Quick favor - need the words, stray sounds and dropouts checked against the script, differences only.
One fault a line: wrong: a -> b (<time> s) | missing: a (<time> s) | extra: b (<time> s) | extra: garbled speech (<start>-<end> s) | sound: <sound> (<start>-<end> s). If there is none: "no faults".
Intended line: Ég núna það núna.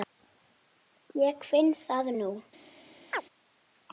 wrong: núna -> finn (1.5 s)
sound: chirp (3.1-3.2 s)